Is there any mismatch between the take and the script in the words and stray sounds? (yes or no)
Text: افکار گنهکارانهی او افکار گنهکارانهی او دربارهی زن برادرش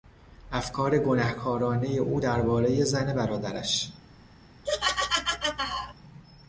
yes